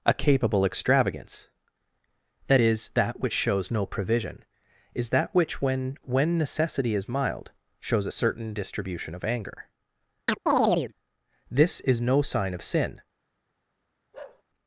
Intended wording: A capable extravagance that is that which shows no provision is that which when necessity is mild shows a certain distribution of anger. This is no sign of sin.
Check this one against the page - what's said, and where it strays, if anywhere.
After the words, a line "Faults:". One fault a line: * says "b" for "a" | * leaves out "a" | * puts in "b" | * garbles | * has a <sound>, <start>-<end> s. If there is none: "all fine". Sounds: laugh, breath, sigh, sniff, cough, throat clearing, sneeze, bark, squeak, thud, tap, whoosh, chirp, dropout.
A capable extravagance that is that which shows no provision is that which when when necessity is mild shows a certain distribution of anger. This is no sign of sin.
Faults:
* puts in "when"
* has a chirp, 10.3-10.9 s
* has a bark, 14.1-14.4 s